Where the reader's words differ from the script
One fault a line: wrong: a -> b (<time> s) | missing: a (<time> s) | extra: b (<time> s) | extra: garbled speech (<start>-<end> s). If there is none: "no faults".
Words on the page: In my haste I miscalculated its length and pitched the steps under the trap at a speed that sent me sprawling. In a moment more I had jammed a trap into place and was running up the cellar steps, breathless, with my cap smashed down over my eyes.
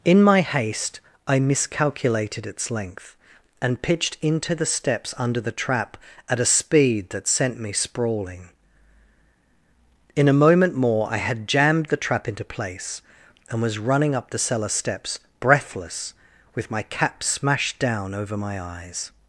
extra: into (4.2 s)
wrong: a -> the (11.9 s)